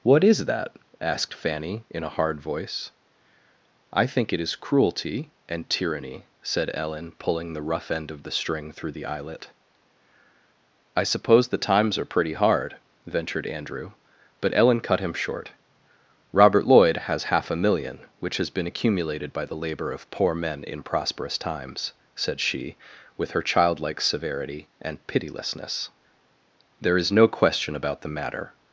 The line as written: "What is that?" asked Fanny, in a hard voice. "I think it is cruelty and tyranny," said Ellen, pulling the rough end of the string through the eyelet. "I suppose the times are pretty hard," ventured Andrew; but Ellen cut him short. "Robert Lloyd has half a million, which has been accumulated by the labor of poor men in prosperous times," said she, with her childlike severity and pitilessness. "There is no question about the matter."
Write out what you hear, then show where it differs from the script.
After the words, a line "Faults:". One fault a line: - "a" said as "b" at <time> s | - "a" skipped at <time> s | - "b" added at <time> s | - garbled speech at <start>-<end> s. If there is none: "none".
"What is that?" asked Fanny, in a hard voice. "I think it is cruelty and tyranny," said Ellen, pulling the rough end of the string through the eyelet. "I suppose the times are pretty hard," ventured Andrew; but Ellen cut him short. "Robert Lloyd has half a million, which has been accumulated by the labor of poor men in prosperous times," said she, with her childlike severity and pitilessness. "There is no question about the matter."
Faults:
none